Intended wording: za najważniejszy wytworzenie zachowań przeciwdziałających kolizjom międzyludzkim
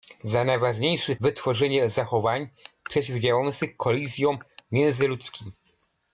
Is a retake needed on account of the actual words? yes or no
no